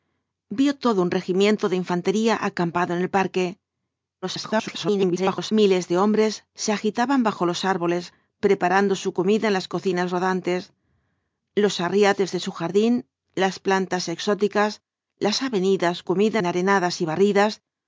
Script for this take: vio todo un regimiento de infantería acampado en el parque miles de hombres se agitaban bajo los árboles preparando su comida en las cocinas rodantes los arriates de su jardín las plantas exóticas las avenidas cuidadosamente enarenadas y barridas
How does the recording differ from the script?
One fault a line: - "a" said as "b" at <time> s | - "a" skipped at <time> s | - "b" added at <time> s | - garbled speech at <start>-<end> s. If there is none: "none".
- garbled speech at 4.2-5.5 s
- "cuidadosamente" said as "comida" at 16.0 s